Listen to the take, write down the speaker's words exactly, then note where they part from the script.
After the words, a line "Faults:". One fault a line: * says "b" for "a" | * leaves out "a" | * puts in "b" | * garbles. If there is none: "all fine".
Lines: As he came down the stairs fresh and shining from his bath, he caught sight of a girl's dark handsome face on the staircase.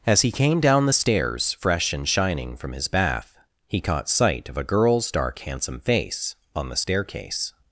As he came down the stairs fresh and shining from his bath, he caught sight of a girl's dark handsome face on the staircase.
Faults:
all fine